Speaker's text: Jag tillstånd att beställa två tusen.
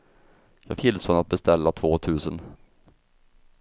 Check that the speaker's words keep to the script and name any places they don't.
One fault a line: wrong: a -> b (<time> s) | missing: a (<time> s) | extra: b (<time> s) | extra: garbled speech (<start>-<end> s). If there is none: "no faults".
no faults